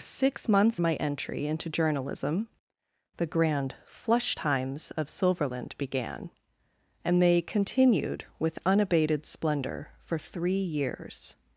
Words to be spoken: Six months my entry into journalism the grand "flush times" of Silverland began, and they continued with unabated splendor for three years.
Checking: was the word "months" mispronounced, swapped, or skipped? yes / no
no